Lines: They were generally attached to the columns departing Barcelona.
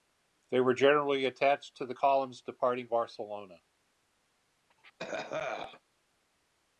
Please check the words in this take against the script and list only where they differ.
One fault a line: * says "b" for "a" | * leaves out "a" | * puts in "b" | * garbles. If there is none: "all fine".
all fine